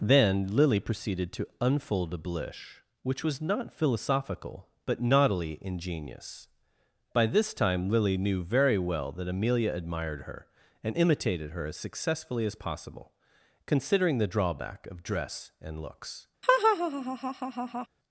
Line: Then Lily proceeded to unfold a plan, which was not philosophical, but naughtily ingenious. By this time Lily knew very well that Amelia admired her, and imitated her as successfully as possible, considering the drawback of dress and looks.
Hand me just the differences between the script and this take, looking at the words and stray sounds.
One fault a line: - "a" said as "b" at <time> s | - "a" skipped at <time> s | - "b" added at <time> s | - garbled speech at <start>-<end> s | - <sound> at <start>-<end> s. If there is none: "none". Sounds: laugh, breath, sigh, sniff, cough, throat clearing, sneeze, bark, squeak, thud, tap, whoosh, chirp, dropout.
- "plan" said as "blish" at 2.2 s
- laugh at 16.4-17.9 s